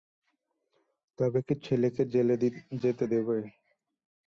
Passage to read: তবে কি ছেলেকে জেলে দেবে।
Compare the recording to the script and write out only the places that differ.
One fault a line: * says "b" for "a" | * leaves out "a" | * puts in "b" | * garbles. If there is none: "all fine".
* puts in "যেতে"